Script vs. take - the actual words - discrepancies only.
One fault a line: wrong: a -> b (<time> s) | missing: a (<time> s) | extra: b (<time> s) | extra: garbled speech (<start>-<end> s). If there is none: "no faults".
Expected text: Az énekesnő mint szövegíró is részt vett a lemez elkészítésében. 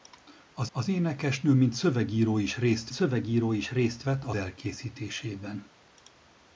extra: az (0.7 s)
extra: szövegíró is részt (2.9 s)
missing: lemez (4.4 s)